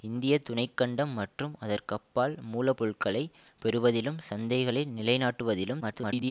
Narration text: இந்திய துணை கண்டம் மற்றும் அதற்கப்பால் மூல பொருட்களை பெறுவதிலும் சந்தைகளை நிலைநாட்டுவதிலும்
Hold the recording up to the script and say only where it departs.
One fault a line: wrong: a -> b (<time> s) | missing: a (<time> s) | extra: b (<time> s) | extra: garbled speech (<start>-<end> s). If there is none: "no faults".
extra: garbled speech (5.8-6.3 s)